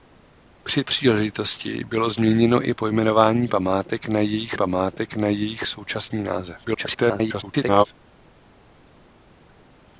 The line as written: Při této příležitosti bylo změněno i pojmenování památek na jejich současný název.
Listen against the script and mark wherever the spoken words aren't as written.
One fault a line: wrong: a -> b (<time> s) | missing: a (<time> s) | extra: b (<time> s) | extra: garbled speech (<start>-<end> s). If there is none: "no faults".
missing: této (0.8 s)
extra: památek na jejich (4.6 s)
extra: garbled speech (6.6-7.9 s)